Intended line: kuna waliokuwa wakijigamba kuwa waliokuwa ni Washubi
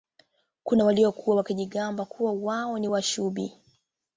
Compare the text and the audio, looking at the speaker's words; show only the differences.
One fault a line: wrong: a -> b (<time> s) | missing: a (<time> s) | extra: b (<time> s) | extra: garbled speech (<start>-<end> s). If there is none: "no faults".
wrong: waliokuwa -> wao (2.3 s)